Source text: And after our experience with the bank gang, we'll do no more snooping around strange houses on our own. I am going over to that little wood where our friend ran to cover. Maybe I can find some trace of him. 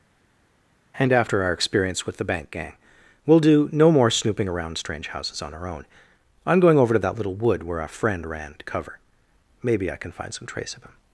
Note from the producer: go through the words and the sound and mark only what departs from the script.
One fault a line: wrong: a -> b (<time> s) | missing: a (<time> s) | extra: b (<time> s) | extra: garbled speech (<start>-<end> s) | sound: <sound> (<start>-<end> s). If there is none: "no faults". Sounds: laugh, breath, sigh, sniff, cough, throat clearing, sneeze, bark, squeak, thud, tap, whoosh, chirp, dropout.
no faults